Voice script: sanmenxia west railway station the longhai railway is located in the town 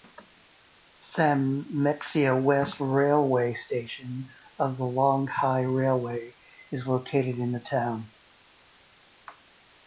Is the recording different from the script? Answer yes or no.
yes